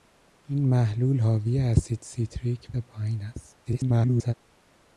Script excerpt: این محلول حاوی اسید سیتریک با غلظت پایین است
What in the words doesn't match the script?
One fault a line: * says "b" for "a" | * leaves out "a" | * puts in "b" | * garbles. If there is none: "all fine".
* leaves out "با غلظت"
* garbles